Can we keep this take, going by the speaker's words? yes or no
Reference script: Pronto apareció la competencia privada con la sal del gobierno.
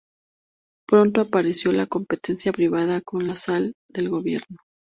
yes